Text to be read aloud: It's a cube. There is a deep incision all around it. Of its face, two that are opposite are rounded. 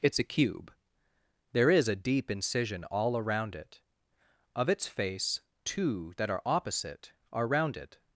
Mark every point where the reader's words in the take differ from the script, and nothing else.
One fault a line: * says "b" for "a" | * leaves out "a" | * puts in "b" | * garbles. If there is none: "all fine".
all fine